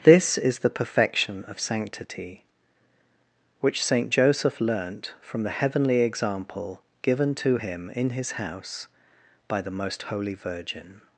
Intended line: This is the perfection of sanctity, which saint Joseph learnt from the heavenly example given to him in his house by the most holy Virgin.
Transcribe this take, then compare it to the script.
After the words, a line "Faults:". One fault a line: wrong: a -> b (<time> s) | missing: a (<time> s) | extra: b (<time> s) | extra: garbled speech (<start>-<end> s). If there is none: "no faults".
This is the perfection of sanctity, which saint Joseph learnt from the heavenly example given to him in his house by the most holy Virgin.
Faults:
no faults